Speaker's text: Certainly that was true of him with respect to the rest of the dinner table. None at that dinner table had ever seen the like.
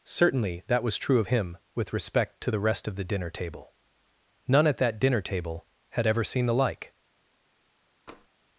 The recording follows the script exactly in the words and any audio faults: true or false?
false